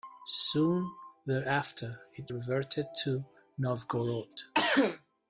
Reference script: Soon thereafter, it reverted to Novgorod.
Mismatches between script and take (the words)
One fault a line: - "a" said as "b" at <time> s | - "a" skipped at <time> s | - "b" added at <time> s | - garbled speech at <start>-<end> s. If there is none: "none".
none